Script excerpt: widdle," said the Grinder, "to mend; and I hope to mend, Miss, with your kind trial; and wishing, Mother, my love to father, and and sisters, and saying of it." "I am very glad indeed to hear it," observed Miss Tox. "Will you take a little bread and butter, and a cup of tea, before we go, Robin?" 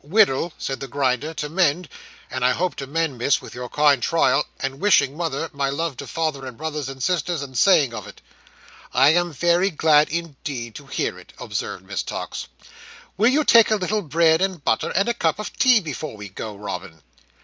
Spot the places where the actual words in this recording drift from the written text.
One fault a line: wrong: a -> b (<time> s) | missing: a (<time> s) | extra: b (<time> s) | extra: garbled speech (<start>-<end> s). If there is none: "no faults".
extra: brothers (6.5 s)